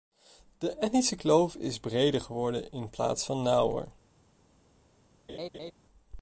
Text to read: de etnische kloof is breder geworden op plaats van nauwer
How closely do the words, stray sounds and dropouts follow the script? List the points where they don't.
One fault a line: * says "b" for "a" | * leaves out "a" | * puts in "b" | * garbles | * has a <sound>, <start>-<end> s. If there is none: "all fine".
* says "in" for "op"
* has a laugh, 5.3-5.7 s